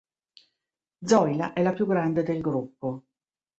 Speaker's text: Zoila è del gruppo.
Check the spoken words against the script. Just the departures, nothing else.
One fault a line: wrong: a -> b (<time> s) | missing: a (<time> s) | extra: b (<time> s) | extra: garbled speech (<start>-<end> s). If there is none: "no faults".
extra: la più grande (1.6 s)